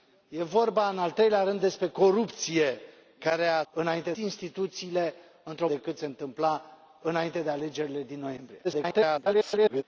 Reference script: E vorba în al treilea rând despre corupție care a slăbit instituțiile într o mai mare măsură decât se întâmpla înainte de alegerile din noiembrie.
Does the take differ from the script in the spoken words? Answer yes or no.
yes